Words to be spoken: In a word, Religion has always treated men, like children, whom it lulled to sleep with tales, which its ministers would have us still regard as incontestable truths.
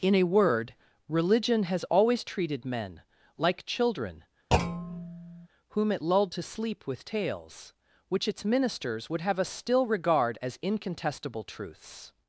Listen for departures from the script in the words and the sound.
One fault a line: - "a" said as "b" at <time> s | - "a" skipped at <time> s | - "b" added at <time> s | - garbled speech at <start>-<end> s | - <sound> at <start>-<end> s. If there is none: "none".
- thud at 4.5-5.5 s